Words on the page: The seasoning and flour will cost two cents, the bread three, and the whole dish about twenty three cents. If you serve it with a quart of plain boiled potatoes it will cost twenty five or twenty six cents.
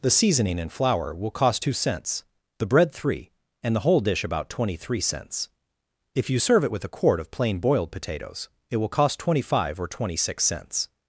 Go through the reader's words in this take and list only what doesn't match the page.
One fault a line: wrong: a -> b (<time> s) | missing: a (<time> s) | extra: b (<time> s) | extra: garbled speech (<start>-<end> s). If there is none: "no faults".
no faults